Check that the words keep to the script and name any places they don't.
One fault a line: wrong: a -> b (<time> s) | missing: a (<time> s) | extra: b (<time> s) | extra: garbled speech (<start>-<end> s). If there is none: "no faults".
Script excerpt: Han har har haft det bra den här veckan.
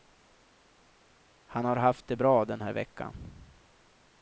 missing: har (1.8 s)